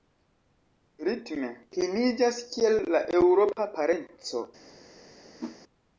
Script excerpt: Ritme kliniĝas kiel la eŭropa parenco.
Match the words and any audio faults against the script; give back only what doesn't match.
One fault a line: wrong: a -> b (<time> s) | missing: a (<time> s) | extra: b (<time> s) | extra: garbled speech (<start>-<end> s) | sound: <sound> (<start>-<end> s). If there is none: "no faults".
sound: whoosh (5.4-5.6 s)